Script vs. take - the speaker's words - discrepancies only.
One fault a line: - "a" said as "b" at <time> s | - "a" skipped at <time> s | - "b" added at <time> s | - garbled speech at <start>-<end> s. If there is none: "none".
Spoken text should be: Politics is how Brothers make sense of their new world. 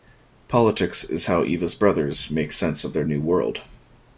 - "Eva's" added at 1.4 s